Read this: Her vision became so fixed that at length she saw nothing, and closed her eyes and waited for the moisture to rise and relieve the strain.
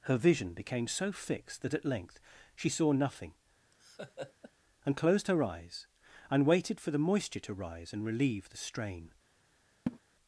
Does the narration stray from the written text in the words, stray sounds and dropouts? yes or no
yes